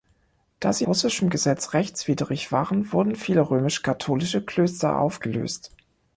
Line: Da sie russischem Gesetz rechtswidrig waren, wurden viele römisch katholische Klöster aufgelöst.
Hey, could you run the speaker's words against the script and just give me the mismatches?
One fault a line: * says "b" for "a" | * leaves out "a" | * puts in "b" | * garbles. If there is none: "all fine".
all fine